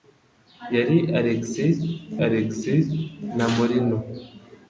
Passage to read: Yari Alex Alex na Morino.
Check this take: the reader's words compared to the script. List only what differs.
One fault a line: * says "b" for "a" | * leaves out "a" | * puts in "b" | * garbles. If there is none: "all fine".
all fine